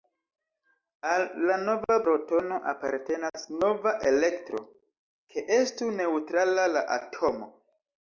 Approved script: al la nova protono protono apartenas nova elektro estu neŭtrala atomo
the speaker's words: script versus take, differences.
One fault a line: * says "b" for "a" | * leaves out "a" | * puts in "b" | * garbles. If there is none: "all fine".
* leaves out "protono"
* puts in "ke"
* puts in "la"